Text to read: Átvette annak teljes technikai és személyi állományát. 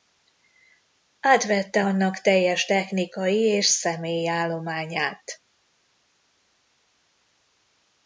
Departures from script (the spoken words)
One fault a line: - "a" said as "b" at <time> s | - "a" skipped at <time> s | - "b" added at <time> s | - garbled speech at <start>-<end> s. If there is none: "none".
none